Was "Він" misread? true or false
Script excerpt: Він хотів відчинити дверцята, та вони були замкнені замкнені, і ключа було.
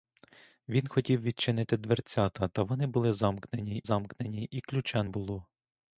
false